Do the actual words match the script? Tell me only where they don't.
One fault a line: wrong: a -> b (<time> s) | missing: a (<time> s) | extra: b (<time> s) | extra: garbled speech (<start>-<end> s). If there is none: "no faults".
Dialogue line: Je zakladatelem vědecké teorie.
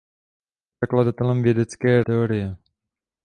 no faults